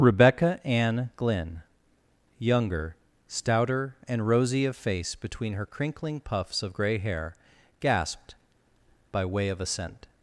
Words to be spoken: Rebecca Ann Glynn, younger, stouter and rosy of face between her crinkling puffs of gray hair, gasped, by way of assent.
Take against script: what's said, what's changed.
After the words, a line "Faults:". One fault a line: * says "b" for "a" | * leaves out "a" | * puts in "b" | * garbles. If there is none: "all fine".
Rebecca Ann Glynn, younger, stouter and rosy of face between her crinkling puffs of gray hair, gasped, by way of assent.
Faults:
all fine